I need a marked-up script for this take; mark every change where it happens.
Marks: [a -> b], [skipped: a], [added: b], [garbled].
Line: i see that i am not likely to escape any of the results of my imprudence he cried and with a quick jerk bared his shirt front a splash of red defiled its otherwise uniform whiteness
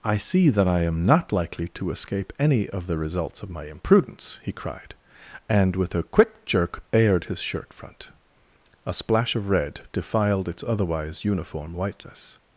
i see that i am not likely to escape any of the results of my imprudence he cried and with a quick jerk bared his shirt front a splash of red defiled its otherwise uniform whiteness